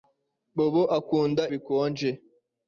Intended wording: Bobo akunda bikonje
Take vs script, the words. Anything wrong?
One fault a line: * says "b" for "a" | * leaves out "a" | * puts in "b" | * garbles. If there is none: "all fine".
all fine